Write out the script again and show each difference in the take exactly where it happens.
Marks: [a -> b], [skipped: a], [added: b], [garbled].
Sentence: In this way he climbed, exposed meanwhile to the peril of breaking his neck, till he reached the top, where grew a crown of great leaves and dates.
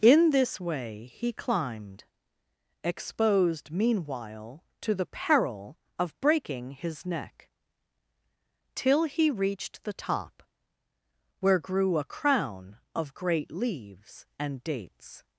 In this way he climbed, exposed meanwhile to the peril of breaking his neck, till he reached the top, where grew a crown of great leaves and dates.